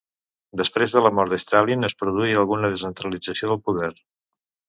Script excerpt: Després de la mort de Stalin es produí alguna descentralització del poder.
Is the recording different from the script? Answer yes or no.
no